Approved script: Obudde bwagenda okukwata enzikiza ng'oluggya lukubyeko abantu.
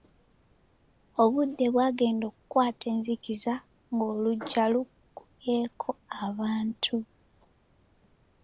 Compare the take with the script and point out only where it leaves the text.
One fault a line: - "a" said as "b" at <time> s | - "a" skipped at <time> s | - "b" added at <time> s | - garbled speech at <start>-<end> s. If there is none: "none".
none